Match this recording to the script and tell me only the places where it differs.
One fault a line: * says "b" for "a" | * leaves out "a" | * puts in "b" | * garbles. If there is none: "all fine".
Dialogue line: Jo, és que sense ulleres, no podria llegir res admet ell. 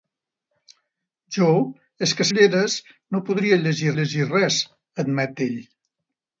* leaves out "sense"
* puts in "llegir"